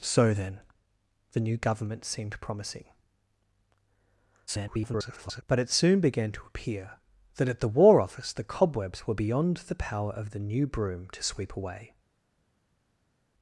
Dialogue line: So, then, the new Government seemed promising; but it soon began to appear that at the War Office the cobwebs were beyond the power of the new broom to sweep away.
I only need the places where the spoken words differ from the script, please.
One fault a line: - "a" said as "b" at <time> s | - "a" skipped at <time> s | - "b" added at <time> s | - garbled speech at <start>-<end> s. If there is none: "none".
- garbled speech at 4.5-5.4 s